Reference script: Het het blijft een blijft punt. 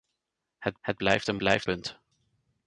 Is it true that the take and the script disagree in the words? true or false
false